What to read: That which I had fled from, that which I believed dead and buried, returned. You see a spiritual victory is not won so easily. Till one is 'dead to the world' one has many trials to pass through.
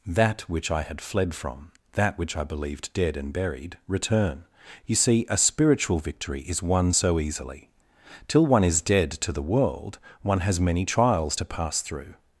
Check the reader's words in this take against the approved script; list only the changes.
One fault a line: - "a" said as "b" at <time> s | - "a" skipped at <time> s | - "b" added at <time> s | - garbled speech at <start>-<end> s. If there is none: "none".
- "returned" said as "return" at 3.9 s
- "not" skipped at 6.6 s